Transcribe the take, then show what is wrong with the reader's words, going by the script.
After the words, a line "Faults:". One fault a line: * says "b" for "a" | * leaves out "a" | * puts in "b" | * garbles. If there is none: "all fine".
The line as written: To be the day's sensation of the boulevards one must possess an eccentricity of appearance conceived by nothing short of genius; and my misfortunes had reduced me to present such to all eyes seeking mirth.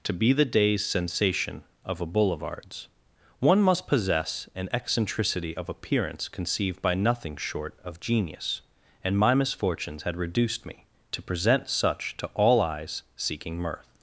To be the day's sensation of a boulevards one must possess an eccentricity of appearance conceived by nothing short of genius; and my misfortunes had reduced me to present such to all eyes seeking mirth.
Faults:
* says "a" for "the"